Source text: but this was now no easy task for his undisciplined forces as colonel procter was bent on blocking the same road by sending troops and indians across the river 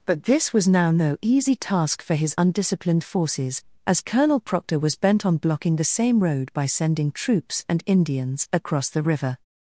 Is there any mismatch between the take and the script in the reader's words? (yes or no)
no